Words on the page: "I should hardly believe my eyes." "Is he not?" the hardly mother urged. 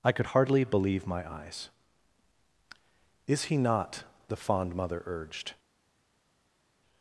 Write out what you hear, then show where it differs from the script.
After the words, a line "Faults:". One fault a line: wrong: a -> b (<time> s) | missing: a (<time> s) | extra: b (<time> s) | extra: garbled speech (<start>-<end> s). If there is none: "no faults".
"I could hardly believe my eyes." "Is he not?" the fond mother urged.
Faults:
wrong: should -> could (0.1 s)
wrong: hardly -> fond (4.3 s)